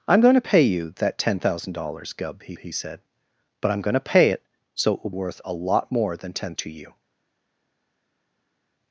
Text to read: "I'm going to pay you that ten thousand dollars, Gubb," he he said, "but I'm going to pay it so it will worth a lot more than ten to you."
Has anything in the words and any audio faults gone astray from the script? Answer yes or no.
no